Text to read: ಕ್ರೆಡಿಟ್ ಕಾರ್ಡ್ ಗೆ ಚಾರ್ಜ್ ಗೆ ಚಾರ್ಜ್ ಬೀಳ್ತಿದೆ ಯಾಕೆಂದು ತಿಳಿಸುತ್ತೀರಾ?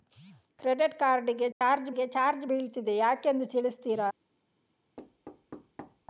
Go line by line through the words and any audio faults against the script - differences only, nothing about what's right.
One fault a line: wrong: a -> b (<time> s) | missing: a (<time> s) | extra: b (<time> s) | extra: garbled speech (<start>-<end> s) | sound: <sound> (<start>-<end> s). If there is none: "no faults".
sound: dropout (1.5-1.6 s)
sound: thud (5.0-6.1 s)